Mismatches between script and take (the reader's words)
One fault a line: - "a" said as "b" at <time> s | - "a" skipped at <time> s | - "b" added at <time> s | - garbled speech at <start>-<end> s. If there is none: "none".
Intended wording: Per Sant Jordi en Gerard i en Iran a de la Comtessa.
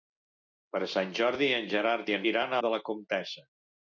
none